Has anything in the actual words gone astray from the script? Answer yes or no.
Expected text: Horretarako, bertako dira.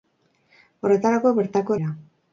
no